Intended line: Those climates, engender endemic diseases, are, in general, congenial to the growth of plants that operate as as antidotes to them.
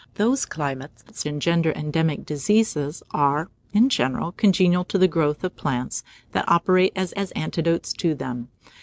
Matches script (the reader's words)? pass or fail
pass